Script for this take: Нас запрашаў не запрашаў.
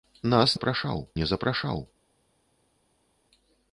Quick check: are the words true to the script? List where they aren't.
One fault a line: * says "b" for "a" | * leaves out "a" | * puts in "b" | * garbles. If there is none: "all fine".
all fine